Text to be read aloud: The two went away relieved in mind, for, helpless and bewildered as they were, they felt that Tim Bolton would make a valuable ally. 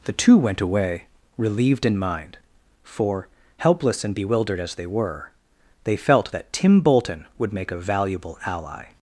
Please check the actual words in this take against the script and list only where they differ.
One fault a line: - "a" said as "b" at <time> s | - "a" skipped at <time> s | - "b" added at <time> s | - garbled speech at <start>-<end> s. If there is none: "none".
none